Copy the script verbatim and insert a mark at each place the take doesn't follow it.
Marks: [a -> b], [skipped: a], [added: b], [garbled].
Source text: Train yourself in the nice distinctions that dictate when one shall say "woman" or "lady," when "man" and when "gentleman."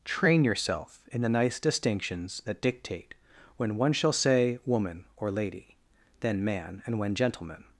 Train yourself in the nice distinctions that dictate when one shall say "woman" or "lady," [when -> then] "man" and when "gentleman."